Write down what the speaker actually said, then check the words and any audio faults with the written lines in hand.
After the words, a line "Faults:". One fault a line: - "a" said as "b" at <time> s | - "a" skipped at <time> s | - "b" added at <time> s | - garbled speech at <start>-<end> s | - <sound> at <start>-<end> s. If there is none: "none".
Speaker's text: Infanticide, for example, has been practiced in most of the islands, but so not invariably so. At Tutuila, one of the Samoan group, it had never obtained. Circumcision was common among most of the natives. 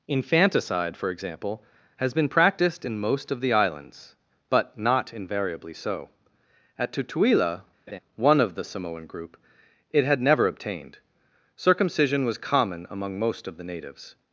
Infanticide, for example, has been practiced in most of the islands, but not invariably so. At Tutuila, one of the Samoan group, it had never obtained. Circumcision was common among most of the natives.
Faults:
- "so" skipped at 4.8 s
- laugh at 7.9-8.0 s